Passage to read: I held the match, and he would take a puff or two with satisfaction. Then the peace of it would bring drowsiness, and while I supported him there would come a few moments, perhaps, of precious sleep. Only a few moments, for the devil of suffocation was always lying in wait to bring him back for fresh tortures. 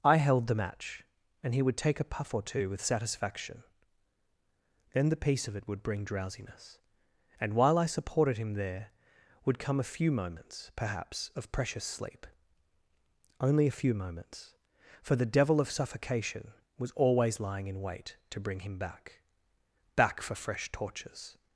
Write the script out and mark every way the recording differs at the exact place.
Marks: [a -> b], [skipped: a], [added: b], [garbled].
I held the match, and he would take a puff or two with satisfaction. Then the peace of it would bring drowsiness, and while I supported him there would come a few moments, perhaps, of precious sleep. Only a few moments, for the devil of suffocation was always lying in wait to bring him back [added: back] for fresh tortures.